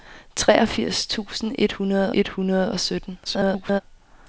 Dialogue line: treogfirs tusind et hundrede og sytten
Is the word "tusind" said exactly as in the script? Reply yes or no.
yes